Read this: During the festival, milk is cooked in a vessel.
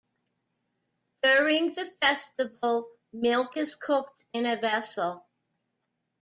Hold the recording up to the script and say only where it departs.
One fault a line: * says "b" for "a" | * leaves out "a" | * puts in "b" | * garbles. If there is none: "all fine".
all fine